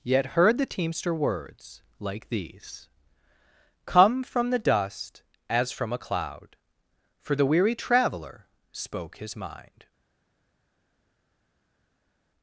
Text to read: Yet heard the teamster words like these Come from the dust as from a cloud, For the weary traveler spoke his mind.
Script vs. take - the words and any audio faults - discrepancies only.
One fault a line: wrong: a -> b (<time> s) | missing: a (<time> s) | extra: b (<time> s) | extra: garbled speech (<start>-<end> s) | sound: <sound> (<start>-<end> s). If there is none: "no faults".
no faults